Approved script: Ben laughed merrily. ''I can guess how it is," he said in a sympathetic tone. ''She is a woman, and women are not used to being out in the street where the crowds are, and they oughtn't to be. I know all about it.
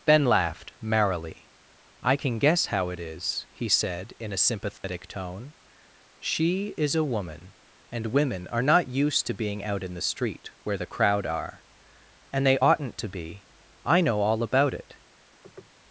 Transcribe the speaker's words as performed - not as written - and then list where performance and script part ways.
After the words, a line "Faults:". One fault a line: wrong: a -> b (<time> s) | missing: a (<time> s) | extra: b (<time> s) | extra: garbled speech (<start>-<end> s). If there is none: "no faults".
Ben laughed merrily. ''I can guess how it is," he said in a sympathetic tone. ''She is a woman, and women are not used to being out in the street where the crowd are, and they oughtn't to be. I know all about it.
Faults:
wrong: crowds -> crowd (10.9 s)